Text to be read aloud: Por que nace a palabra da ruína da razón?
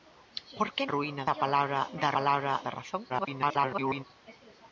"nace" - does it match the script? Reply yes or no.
no